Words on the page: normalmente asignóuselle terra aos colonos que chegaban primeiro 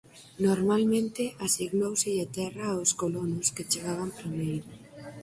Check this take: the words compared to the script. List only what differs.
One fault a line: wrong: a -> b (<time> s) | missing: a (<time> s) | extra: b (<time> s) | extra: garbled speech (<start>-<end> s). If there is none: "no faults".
no faults